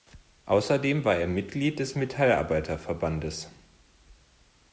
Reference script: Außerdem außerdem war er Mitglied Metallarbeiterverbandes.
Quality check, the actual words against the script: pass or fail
fail